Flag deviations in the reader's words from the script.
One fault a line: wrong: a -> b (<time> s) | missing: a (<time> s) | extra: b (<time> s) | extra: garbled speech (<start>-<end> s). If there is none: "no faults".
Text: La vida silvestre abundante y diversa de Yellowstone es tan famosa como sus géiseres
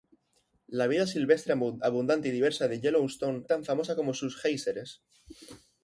missing: es (3.5 s)